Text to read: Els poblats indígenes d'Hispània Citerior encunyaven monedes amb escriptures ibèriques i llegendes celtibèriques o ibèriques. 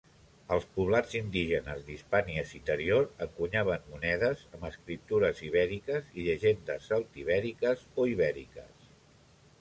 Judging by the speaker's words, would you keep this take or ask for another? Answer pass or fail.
pass